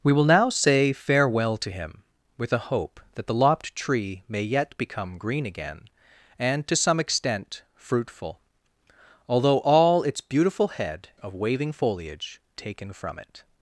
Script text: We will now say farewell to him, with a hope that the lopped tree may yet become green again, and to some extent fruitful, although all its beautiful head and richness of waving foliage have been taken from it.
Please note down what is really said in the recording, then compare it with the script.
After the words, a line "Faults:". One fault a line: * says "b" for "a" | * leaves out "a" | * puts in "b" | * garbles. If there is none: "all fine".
We will now say farewell to him, with a hope that the lopped tree may yet become green again, and to some extent fruitful, although all its beautiful head of waving foliage taken from it.
Faults:
* leaves out "and richness"
* leaves out "have been"